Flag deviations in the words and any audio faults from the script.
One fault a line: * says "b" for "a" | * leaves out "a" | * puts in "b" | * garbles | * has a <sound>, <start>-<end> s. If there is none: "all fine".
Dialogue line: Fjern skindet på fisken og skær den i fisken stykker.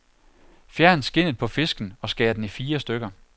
* says "fire" for "fisken"